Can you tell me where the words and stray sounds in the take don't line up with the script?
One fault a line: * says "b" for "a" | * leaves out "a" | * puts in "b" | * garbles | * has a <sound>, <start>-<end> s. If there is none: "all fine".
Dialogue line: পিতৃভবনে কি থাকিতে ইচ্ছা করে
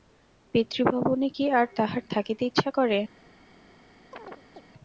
* puts in "আর তাহার"
* has a chirp, 4.1-4.6 s